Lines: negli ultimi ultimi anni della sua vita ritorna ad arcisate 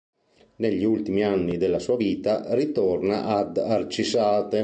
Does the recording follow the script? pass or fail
fail